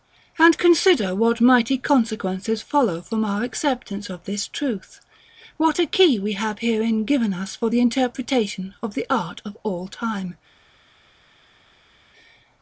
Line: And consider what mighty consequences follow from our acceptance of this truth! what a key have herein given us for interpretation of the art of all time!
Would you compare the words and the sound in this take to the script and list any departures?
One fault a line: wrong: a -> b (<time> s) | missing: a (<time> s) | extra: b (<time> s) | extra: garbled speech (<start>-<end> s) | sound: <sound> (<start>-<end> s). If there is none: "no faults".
extra: we (6.2 s)
extra: the (7.7 s)